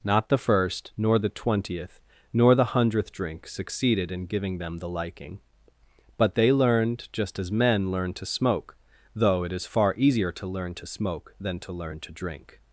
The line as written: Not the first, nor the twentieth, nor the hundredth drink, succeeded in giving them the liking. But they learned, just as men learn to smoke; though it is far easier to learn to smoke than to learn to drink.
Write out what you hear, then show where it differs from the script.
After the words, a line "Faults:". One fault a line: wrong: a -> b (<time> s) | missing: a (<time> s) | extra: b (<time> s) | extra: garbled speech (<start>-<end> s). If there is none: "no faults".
Not the first, nor the twentieth, nor the hundredth drink, succeeded in giving them the liking. But they learned, just as men learn to smoke; though it is far easier to learn to smoke than to learn to drink.
Faults:
no faults